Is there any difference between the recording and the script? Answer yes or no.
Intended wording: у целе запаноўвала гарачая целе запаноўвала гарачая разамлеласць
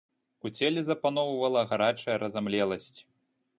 yes